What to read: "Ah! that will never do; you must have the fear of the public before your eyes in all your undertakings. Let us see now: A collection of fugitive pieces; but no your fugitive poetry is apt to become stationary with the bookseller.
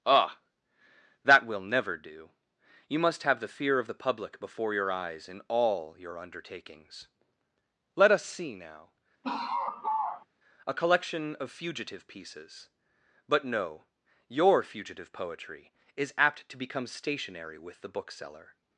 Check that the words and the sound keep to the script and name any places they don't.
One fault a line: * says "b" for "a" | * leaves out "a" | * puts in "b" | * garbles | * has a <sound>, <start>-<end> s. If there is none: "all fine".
* has a laugh, 9.2-10.3 s